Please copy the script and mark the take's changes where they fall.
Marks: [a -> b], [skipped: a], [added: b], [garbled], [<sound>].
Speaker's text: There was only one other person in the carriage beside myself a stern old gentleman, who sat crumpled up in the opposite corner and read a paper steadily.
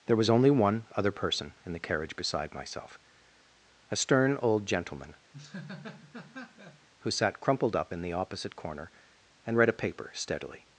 There was only one other person in the carriage beside myself a stern old gentleman, [laugh] who sat crumpled up in the opposite corner and read a paper steadily.